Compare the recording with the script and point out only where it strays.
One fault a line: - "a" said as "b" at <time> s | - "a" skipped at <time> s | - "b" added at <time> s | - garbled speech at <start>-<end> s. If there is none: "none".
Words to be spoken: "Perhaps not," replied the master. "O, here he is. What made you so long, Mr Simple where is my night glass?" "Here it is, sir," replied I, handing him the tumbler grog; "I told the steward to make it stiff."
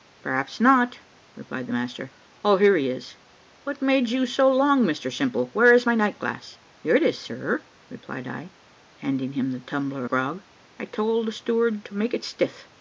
none